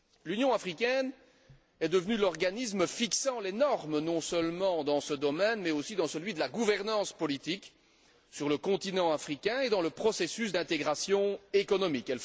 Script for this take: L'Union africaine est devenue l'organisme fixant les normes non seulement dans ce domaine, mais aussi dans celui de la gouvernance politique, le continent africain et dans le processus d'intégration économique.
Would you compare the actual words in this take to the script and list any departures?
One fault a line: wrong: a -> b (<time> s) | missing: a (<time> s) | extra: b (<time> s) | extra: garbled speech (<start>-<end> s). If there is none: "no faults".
extra: sur (8.3 s)